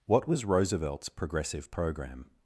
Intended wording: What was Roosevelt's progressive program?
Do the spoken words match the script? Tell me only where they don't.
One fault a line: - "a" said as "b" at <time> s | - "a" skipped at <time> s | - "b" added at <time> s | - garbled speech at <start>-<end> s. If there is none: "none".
none